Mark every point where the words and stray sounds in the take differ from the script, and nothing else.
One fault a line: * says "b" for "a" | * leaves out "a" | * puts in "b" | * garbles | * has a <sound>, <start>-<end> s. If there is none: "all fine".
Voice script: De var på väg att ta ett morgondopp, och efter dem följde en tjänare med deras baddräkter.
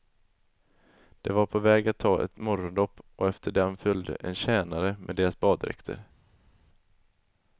all fine